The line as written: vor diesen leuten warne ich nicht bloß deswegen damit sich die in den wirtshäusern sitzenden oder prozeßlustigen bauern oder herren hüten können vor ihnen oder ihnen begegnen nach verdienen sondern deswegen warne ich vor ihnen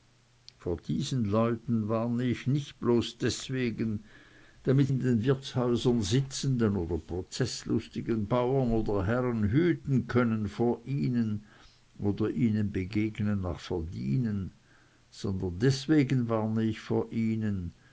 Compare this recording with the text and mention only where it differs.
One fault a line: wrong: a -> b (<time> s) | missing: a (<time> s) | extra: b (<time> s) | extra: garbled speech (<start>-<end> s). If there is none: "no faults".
missing: sich die (4.9 s)